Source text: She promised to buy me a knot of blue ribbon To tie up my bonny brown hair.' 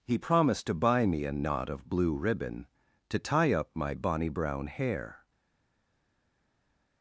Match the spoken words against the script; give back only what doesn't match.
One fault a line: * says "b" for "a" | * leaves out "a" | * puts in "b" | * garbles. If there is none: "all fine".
* says "He" for "She"